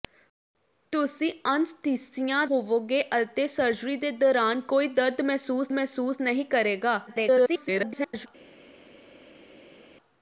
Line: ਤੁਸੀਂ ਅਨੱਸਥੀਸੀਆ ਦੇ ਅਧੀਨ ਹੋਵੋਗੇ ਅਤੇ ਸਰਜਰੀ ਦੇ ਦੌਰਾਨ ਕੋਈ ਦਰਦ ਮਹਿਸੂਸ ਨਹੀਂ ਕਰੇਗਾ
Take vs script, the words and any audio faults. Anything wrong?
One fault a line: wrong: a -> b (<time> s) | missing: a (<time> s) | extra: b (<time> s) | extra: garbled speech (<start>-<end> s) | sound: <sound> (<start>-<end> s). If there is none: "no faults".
missing: ਦੇ ਅਧੀਨ (2.4 s)
extra: ਮਹਿਸੂਸ (5.7 s)
extra: garbled speech (7.1-8.3 s)